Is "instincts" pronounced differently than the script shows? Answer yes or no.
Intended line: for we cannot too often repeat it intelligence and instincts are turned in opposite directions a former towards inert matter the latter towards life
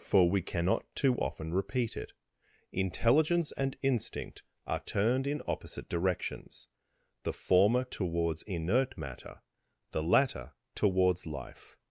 yes